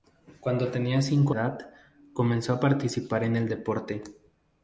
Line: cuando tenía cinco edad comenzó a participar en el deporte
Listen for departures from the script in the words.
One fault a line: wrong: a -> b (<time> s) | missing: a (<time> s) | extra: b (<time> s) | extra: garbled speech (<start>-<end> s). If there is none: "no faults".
no faults